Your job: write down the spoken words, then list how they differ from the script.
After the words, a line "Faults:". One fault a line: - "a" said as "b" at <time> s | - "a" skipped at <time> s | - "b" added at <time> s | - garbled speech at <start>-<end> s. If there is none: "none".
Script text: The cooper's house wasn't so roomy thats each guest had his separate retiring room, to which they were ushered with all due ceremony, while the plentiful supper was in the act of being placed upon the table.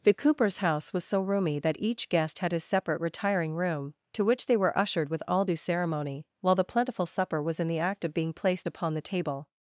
The cooper's house was so roomy that each guest had his separate retiring room, to which they were ushered with all due ceremony, while the plentiful supper was in the act of being placed upon the table.
Faults:
- "wasn't" said as "was" at 0.9 s
- "thats" said as "that" at 1.6 s